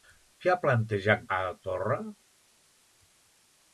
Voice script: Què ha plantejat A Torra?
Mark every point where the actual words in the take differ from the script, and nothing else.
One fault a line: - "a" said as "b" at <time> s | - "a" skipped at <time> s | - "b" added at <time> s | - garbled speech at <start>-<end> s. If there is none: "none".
none